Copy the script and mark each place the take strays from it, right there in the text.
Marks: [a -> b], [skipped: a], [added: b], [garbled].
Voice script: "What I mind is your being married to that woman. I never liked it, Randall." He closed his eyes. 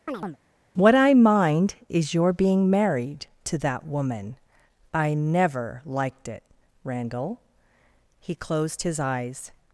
"What I mind is your being married to that woman. I never liked it, Randall." He closed his eyes.